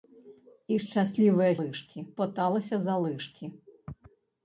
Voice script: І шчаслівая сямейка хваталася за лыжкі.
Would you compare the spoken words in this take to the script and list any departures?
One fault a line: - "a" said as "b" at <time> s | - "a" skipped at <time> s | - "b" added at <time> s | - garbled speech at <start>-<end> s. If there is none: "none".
- "сямейка" said as "лыжкі" at 1.6 s